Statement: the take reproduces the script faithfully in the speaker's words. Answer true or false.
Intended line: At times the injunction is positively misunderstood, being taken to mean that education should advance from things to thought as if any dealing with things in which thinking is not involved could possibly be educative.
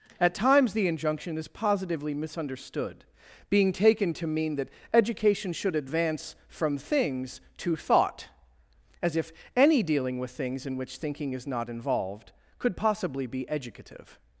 true